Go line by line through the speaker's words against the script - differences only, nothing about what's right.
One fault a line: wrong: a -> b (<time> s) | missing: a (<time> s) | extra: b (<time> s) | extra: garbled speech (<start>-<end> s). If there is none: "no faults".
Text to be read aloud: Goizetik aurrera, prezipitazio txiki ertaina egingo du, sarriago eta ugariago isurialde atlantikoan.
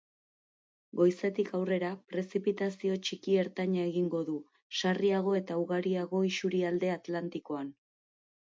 no faults